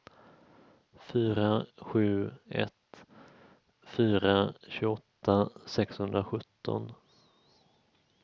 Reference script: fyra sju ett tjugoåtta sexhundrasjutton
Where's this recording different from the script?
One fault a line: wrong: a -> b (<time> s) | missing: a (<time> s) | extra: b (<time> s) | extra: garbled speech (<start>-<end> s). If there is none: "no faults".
extra: fyra (3.8 s)